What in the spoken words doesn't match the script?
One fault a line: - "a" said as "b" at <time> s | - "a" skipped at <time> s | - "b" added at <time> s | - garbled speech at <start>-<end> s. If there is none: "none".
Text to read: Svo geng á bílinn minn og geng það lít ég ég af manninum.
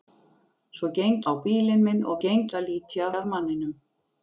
none